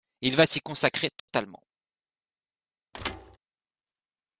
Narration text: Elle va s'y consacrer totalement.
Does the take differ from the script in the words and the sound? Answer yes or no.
yes